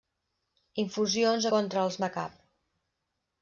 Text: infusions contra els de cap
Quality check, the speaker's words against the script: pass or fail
pass